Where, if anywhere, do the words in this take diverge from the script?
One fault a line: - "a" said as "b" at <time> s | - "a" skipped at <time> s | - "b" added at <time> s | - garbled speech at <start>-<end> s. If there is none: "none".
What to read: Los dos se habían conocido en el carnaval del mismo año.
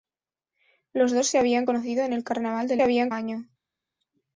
- "mismo" said as "habían" at 2.8 s